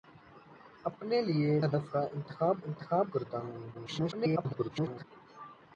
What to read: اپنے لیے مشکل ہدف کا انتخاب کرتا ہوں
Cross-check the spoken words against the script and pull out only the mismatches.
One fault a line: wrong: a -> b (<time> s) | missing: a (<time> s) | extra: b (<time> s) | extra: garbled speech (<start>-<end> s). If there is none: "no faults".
missing: مشکل (1.6 s)
extra: انتخاب (2.7 s)
extra: garbled speech (3.7-5.0 s)